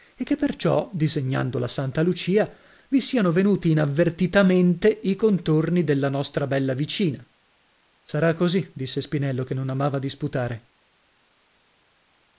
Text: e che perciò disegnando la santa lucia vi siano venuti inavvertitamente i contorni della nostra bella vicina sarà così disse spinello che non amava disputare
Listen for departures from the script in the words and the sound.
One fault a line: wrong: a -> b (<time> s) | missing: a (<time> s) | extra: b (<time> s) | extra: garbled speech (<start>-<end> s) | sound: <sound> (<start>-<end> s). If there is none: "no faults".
no faults